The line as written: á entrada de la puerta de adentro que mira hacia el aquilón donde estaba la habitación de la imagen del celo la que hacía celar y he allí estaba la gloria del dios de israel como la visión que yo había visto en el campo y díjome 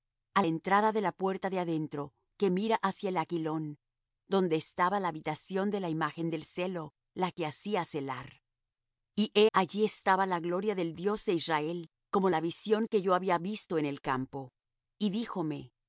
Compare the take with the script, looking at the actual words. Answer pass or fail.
pass